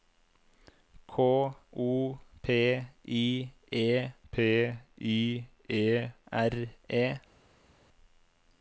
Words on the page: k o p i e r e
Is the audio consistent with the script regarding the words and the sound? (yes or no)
no